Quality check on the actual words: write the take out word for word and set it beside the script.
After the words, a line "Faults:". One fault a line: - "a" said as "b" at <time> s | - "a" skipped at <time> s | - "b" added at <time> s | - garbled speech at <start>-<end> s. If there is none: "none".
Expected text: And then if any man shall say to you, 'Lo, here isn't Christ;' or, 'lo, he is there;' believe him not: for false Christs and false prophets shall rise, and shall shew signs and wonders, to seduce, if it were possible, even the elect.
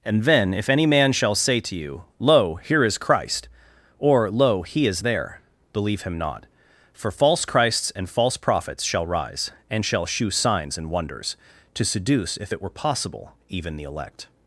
And then if any man shall say to you, 'Lo, here is Christ;' or, 'lo, he is there;' believe him not: for false Christs and false prophets shall rise, and shall shew signs and wonders, to seduce, if it were possible, even the elect.
Faults:
- "isn't" said as "is" at 2.8 s